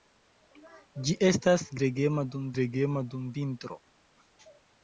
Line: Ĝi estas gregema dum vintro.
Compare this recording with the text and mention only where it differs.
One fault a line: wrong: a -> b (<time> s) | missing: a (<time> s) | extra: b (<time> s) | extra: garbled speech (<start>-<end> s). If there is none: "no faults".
extra: gregema dum (2.6 s)